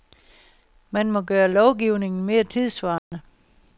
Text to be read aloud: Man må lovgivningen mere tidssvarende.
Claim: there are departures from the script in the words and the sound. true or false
true